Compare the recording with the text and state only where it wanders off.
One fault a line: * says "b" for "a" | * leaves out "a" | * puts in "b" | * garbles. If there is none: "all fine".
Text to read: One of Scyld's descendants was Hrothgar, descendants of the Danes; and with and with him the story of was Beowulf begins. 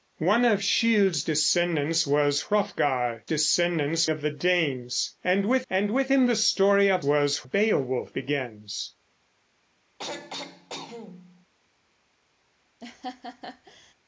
all fine